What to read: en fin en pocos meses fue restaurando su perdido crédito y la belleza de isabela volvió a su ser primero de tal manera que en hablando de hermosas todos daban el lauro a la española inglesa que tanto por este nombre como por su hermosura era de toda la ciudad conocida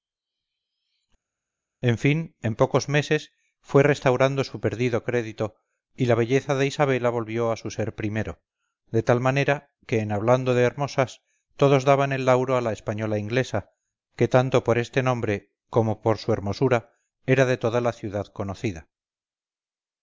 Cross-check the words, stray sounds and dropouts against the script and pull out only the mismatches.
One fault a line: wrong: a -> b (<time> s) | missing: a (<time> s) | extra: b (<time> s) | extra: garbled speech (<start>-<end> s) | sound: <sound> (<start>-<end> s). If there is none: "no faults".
no faults